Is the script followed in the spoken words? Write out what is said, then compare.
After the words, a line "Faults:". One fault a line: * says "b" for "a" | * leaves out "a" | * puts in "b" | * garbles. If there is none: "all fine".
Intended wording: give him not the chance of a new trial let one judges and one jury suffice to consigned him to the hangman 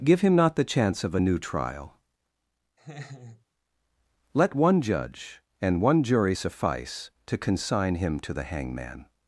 give him not the chance of a new trial let one judge and one jury suffice to consign him to the hangman
Faults:
* says "judge" for "judges"
* says "consign" for "consigned"